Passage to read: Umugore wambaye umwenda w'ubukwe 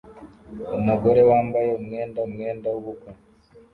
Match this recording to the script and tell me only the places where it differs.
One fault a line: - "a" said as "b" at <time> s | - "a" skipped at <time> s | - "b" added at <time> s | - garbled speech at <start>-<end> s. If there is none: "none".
- "umwenda" added at 2.3 s